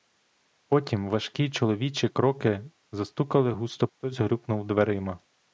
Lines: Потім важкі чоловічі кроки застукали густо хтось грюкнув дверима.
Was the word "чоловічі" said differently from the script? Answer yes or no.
no